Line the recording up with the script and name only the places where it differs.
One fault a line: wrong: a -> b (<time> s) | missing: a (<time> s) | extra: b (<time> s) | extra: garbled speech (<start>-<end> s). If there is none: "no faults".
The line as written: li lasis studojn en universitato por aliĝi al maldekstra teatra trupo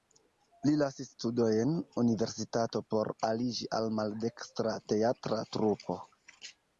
missing: en (1.8 s)